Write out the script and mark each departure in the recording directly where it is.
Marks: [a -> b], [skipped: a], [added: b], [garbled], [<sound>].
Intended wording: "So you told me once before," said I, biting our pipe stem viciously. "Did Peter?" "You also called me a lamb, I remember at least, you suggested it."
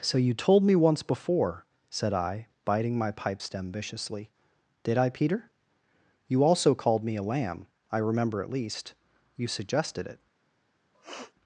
"So you told me once before," said I, biting [our -> my] pipe stem viciously. "Did [added: I] Peter?" "You also called me a lamb, I remember at least, you suggested it." [sniff]